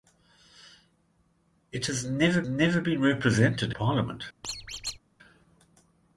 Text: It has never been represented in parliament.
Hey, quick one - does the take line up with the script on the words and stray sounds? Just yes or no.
no